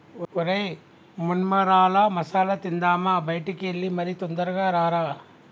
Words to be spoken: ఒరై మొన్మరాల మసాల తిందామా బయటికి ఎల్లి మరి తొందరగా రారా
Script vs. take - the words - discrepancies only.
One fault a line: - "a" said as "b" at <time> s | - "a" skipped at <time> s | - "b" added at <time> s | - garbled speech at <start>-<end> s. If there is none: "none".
none